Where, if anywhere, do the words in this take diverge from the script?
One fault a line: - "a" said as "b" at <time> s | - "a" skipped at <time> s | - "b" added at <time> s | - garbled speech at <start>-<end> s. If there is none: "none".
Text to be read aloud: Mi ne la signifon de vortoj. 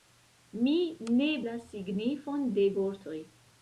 none